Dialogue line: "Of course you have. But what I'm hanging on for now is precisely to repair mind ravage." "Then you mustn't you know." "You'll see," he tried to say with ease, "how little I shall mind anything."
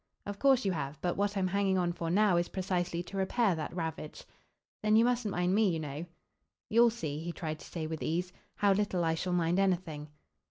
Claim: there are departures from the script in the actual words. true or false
true